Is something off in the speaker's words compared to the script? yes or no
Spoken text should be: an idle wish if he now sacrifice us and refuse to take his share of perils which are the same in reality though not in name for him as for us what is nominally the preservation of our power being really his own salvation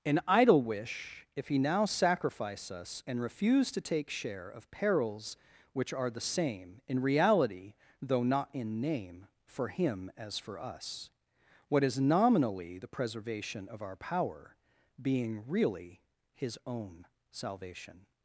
yes